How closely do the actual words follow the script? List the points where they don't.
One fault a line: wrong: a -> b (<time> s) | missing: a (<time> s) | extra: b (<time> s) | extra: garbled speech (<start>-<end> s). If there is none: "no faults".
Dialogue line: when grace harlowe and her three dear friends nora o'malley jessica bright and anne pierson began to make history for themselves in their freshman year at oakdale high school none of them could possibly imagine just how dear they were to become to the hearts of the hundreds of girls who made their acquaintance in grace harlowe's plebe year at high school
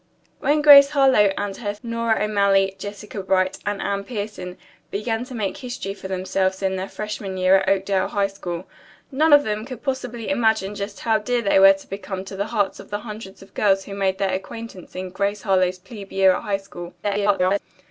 missing: three dear friends (1.8 s)
extra: garbled speech (17.0-17.6 s)